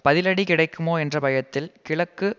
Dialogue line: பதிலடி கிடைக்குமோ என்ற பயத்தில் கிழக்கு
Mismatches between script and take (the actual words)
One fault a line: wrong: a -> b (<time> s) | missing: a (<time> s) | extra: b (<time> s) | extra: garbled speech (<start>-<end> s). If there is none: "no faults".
no faults